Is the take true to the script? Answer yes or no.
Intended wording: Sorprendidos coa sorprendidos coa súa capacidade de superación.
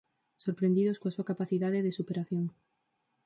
no